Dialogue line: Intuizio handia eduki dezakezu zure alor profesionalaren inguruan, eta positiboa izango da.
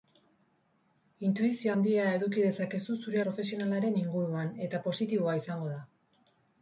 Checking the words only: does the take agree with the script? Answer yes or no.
no